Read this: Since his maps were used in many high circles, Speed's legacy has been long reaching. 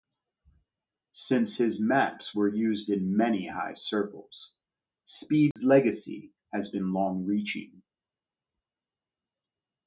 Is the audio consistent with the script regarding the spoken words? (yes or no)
yes